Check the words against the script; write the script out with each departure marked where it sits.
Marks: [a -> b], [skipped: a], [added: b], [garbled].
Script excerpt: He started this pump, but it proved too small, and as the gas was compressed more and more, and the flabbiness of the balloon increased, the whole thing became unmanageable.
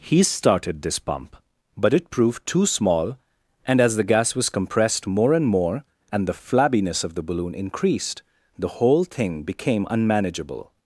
He started this pump, but it proved too small, and as the gas was compressed more and more, and the flabbiness of the balloon increased, the whole thing became unmanageable.